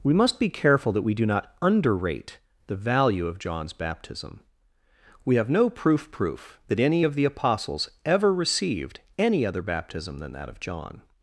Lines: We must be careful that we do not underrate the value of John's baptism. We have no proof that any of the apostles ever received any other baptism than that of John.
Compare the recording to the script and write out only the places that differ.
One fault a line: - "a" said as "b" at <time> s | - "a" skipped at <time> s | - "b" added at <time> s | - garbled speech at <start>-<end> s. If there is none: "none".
- "proof" added at 6.1 s